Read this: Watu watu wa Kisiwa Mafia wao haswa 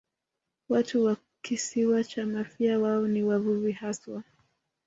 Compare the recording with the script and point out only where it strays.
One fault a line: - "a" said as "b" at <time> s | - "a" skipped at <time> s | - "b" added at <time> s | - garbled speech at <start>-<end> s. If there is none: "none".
- "watu" skipped at 1.0 s
- "cha" added at 2.0 s
- "ni wavuvi" added at 3.1 s